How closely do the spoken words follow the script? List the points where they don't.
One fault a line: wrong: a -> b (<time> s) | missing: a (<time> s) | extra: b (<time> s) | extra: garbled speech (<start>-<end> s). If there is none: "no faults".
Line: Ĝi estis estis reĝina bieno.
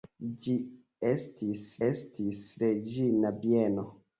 no faults